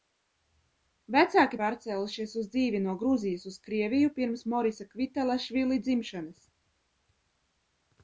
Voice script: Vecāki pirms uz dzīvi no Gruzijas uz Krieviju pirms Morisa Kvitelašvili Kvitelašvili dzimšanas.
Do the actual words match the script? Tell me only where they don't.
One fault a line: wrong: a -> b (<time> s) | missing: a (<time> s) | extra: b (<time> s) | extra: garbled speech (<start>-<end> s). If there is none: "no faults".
wrong: pirms -> pārcēlušies (1.6 s)
missing: Kvitelašvili (5.8 s)